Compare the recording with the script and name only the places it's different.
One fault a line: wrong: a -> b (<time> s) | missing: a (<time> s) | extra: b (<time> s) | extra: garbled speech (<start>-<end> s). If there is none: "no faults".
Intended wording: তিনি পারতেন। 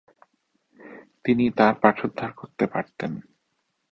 extra: তার পাঠোদ্ধার করতে (1.6 s)